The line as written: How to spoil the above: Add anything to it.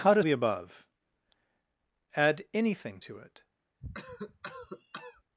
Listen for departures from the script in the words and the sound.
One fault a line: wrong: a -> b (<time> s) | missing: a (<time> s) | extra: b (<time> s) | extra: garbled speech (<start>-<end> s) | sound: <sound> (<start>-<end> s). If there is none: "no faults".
missing: spoil (0.2 s)
sound: cough (3.8-5.2 s)